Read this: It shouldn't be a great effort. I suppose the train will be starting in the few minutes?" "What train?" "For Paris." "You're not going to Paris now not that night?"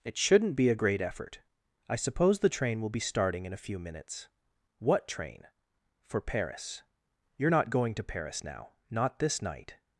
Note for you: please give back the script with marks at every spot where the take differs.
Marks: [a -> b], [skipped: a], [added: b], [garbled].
It shouldn't be a great effort. I suppose the train will be starting in [the -> a] few minutes?" "What train?" "For Paris." "You're not going to Paris now not [that -> this] night?"